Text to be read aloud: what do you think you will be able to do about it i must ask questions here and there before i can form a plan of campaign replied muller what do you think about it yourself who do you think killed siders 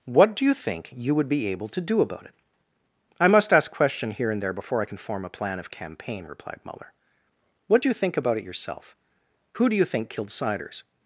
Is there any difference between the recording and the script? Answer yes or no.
yes